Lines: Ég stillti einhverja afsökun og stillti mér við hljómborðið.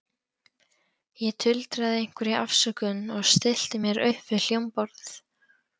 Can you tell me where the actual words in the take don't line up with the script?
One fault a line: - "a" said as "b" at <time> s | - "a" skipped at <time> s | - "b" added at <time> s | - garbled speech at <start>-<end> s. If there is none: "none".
- "stillti" said as "tuldraði" at 1.4 s
- "upp" added at 4.1 s